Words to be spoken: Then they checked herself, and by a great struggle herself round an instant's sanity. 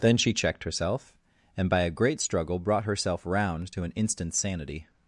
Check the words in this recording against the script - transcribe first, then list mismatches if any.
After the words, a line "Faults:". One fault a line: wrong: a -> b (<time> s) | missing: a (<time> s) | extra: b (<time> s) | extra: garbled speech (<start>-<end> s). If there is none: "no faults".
Then she checked herself, and by a great struggle brought herself round to an instant's sanity.
Faults:
wrong: they -> she (0.2 s)
extra: brought (2.6 s)
extra: to (3.7 s)